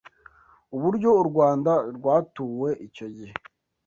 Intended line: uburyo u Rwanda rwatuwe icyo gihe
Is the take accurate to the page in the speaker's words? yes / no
yes